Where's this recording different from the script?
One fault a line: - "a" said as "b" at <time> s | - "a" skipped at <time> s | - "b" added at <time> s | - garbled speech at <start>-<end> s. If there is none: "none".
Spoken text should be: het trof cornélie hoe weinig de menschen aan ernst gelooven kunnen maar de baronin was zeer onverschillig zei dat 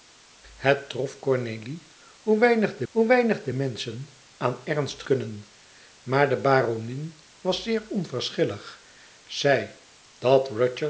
- "hoe weinig de" added at 2.9 s
- "gelooven" skipped at 5.0 s